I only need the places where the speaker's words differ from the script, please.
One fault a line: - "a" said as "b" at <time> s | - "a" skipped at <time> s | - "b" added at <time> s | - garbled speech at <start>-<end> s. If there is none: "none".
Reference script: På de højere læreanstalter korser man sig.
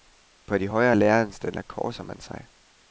none